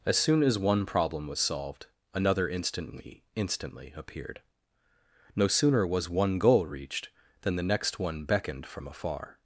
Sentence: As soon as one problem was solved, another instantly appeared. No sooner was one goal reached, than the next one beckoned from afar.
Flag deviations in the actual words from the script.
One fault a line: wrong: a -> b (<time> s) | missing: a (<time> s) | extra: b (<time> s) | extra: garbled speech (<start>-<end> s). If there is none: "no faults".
extra: instantly (3.4 s)